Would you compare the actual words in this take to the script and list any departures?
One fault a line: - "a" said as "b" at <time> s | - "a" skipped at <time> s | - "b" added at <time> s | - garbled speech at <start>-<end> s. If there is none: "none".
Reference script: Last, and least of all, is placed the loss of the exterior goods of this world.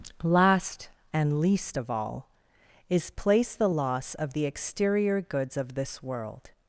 none